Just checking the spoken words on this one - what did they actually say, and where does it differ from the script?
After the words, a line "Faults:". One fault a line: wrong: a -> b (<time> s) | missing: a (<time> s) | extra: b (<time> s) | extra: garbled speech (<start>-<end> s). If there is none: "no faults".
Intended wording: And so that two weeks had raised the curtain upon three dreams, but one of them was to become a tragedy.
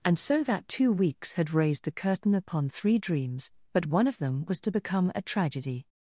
And so that two weeks had raised the curtain upon three dreams, but one of them was to become a tragedy.
Faults:
no faults